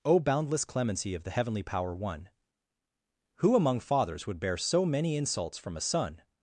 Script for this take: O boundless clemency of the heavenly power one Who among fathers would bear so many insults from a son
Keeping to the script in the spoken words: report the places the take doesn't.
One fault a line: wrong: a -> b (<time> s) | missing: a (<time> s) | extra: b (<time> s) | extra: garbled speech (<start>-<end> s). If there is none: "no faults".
no faults